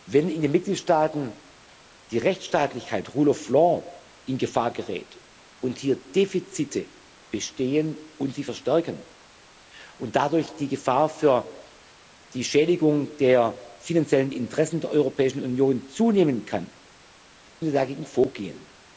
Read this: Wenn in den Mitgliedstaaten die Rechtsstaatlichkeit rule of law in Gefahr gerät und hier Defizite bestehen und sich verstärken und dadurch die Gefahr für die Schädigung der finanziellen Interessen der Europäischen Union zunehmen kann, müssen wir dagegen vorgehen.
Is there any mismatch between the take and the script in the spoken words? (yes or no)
yes